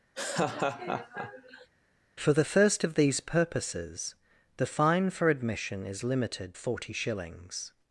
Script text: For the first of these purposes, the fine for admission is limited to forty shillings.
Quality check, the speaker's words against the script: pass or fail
fail